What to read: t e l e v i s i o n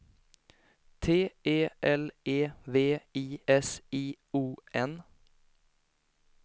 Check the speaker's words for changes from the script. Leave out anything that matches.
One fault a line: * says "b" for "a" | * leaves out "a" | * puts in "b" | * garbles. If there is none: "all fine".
all fine